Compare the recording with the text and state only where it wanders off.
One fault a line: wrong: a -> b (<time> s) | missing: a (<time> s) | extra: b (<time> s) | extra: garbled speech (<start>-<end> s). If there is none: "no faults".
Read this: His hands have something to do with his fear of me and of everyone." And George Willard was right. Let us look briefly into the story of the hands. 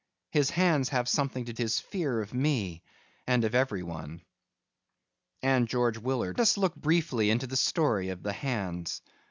missing: do with (1.5 s)
missing: was right Let (6.4 s)